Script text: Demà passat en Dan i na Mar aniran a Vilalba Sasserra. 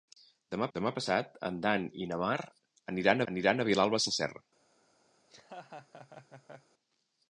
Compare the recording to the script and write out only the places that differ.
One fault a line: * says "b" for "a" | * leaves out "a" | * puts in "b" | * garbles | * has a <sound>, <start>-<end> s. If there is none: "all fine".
* puts in "demà"
* puts in "aniran"
* has a laugh, 5.2-6.7 s